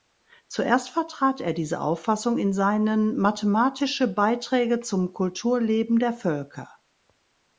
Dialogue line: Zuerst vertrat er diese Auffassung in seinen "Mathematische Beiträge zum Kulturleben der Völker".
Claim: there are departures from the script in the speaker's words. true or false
false